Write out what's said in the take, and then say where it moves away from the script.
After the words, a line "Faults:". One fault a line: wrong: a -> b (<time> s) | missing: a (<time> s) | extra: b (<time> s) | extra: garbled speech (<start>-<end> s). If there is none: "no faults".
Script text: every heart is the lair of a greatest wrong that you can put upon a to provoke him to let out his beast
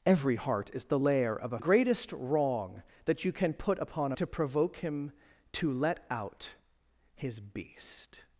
every heart is the lair of a greatest wrong that you can put upon a to provoke him to let out his beast
Faults:
no faults